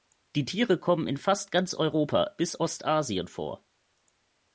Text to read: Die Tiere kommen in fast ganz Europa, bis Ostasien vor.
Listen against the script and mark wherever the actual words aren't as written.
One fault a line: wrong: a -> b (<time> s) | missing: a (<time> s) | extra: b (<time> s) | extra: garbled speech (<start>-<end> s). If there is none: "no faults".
no faults